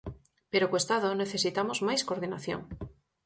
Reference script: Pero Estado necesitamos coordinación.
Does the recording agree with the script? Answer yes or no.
no